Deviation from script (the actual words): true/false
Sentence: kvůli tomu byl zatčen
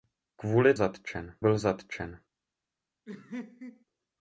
true